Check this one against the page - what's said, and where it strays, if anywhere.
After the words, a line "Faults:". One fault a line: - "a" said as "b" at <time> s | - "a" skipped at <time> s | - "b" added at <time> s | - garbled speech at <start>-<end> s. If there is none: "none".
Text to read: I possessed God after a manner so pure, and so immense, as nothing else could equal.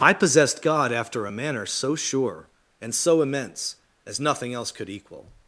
I possessed God after a manner so sure, and so immense, as nothing else could equal.
Faults:
- "pure" said as "sure" at 1.9 s